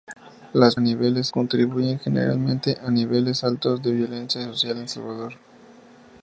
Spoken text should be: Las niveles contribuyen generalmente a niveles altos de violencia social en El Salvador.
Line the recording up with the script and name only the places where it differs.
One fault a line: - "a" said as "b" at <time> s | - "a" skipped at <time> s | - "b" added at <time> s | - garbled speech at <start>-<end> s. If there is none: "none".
none